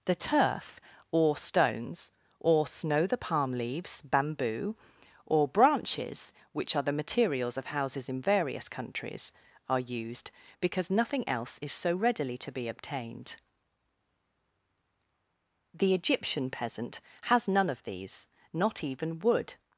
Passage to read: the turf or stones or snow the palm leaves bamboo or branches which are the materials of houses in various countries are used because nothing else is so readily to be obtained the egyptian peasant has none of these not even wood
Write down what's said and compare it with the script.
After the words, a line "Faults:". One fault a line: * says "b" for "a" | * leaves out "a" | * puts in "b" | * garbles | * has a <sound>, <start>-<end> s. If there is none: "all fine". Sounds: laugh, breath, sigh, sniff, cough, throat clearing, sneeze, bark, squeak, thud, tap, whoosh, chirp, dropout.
the turf or stones or snow the palm leaves bamboo or branches which are the materials of houses in various countries are used because nothing else is so readily to be obtained the egyptian peasant has none of these not even wood
Faults:
all fine